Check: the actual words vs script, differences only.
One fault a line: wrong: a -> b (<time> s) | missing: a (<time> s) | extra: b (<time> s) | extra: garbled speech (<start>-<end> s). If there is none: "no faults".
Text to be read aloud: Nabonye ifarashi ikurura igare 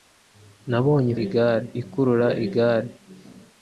wrong: ifarashi -> igare (1.2 s)